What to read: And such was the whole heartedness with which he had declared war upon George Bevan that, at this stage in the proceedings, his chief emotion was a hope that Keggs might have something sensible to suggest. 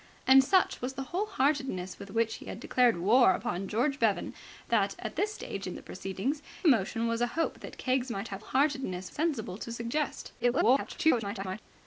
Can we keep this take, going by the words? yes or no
no